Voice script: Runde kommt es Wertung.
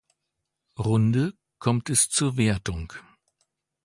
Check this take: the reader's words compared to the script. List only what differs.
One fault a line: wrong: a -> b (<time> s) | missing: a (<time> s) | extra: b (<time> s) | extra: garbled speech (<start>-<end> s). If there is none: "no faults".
extra: zur (2.1 s)